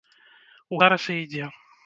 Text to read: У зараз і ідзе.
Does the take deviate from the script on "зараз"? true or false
false